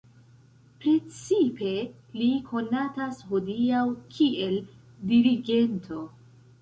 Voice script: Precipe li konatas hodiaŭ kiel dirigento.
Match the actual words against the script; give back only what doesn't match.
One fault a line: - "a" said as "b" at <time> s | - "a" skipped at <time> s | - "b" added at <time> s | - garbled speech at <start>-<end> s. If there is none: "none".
none